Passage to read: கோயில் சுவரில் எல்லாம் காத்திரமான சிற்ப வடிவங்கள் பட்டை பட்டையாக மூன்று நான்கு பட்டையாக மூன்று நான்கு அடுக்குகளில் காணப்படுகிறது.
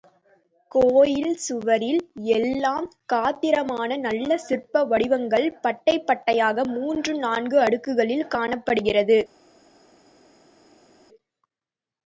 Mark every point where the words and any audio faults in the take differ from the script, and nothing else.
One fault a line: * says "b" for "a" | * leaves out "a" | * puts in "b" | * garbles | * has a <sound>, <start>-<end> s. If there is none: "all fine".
* puts in "நல்ல"
* leaves out "பட்டையாக மூன்று நான்கு"